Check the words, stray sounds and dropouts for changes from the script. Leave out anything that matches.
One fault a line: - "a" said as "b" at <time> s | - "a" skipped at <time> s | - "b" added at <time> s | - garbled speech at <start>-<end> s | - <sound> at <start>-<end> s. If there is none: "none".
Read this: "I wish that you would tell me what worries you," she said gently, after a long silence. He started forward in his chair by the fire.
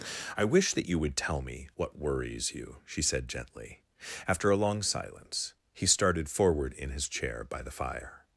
none